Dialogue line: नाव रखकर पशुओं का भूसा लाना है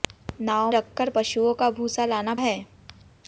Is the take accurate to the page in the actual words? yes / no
yes